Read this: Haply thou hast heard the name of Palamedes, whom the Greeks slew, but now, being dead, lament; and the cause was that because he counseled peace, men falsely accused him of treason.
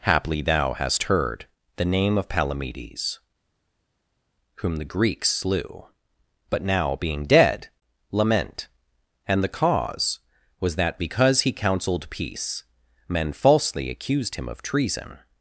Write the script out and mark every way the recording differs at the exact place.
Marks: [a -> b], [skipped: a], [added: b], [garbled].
Haply thou hast heard the name of Palamedes, whom the Greeks slew, but now, being dead, lament; and the cause was that because he counseled peace, men falsely accused him of treason.